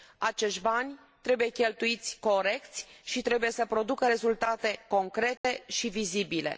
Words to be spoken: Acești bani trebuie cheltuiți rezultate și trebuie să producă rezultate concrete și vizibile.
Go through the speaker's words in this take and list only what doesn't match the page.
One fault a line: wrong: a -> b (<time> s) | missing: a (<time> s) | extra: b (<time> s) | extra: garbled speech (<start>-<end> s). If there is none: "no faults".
wrong: rezultate -> corect (2.2 s)